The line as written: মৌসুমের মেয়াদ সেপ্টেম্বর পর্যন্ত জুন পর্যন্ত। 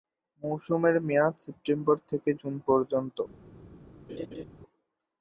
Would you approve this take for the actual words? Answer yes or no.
no